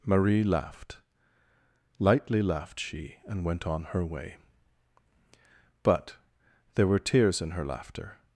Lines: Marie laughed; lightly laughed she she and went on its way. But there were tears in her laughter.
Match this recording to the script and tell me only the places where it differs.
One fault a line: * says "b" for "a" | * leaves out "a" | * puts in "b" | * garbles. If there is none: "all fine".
* leaves out "she"
* says "her" for "its"